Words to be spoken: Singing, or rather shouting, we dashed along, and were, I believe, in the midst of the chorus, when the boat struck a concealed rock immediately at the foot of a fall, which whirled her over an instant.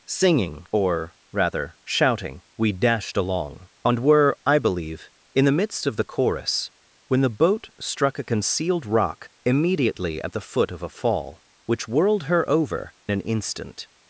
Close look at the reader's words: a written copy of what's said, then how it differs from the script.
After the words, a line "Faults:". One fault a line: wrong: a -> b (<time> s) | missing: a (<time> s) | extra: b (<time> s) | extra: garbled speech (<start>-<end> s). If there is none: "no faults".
Singing, or rather shouting, we dashed along, and were, I believe, in the midst of the chorus, when the boat struck a concealed rock immediately at the foot of a fall, which whirled her over an instant.
Faults:
no faults